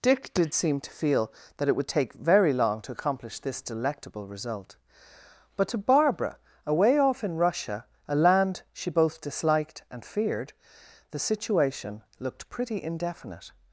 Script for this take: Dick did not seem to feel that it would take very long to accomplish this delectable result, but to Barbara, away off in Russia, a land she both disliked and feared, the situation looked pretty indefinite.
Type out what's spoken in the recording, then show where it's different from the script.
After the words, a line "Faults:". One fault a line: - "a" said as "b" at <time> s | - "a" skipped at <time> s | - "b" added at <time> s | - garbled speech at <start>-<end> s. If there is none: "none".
Dick did seem to feel that it would take very long to accomplish this delectable result, but to Barbara, away off in Russia, a land she both disliked and feared, the situation looked pretty indefinite.
Faults:
- "not" skipped at 0.6 s